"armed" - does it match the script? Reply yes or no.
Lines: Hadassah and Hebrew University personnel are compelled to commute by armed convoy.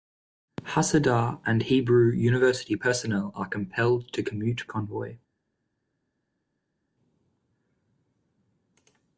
no